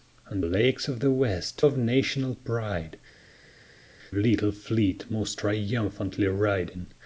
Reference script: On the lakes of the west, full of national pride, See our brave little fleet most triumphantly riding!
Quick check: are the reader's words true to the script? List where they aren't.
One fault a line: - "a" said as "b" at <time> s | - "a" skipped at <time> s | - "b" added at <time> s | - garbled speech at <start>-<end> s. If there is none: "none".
- "the" skipped at 0.4 s
- "full" skipped at 1.6 s
- "See our brave" skipped at 3.0 s